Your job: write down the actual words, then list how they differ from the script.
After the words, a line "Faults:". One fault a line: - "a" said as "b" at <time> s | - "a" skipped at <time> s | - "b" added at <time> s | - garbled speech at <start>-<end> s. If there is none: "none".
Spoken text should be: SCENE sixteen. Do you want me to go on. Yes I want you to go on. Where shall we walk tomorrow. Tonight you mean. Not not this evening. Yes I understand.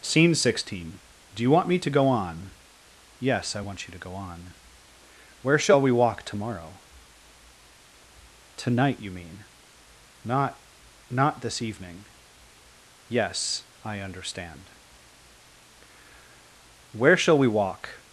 SCENE sixteen. Do you want me to go on. Yes I want you to go on. Where shall we walk tomorrow. Tonight you mean. Not not this evening. Yes I understand. Where shall we walk
Faults:
- "Where shall we walk" added at 16.9 s